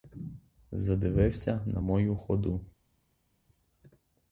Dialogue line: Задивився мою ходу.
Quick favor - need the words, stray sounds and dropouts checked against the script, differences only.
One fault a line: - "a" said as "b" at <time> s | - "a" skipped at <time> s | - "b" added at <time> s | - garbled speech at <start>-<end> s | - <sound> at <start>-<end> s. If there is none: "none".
- "на" added at 1.6 s